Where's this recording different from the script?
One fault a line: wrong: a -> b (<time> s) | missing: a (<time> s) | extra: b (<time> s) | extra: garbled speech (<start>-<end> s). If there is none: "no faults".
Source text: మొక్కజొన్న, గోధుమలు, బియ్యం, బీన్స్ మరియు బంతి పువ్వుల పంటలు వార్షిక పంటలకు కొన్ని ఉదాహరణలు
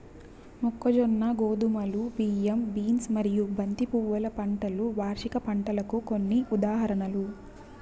no faults